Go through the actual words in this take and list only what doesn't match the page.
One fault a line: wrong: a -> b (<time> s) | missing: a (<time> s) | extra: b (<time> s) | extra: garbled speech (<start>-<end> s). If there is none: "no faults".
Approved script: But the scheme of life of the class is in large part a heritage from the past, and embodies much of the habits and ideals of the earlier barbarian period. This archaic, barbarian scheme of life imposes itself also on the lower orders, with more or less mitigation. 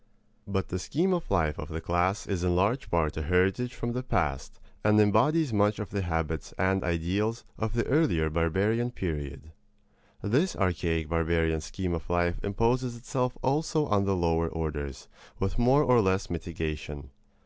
no faults